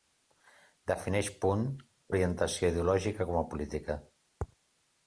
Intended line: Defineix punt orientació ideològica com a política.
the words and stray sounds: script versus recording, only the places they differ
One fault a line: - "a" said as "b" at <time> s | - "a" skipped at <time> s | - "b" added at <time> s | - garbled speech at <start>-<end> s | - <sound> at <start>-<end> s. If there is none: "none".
none